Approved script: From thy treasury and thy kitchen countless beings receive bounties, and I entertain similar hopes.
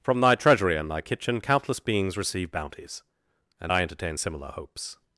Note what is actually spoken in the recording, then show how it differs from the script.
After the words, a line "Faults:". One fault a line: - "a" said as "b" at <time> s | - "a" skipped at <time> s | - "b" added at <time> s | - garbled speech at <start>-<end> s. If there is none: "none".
From thy treasury and thy kitchen countless beings receive bounties, and I entertain similar hopes.
Faults:
none